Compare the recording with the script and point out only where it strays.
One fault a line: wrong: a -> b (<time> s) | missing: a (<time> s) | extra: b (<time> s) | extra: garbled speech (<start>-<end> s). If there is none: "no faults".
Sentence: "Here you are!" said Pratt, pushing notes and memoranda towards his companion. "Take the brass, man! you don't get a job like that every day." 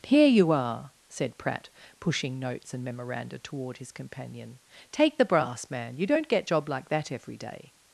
wrong: towards -> toward (3.4 s)
missing: a (6.5 s)